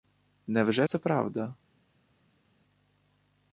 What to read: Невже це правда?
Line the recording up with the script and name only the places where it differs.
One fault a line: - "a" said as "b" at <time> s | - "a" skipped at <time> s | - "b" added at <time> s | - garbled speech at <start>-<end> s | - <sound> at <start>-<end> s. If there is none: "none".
none